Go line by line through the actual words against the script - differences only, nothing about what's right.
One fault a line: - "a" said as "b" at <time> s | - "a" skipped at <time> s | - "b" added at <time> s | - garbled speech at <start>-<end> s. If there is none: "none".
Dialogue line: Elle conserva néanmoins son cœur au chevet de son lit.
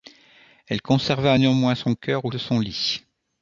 - "chevet" skipped at 2.3 s